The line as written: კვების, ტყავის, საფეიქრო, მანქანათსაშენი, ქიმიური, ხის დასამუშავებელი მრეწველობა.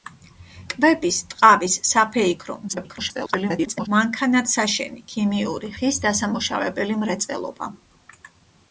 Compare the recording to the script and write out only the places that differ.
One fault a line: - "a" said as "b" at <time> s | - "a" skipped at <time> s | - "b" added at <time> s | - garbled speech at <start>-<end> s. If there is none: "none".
- garbled speech at 2.7-3.9 s